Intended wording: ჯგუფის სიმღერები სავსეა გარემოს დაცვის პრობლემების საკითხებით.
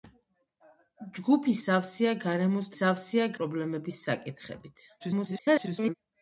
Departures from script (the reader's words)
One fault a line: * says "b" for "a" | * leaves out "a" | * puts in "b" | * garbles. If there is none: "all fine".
* leaves out "სიმღერები"
* says "სავსეა" for "დაცვის"
* garbles